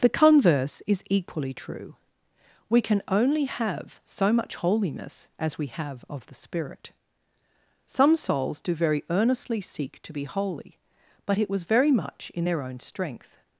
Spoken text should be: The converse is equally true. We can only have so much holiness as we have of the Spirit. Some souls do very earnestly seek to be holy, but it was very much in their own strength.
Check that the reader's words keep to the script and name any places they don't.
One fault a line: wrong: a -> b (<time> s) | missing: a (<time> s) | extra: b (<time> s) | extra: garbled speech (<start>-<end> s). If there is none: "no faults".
no faults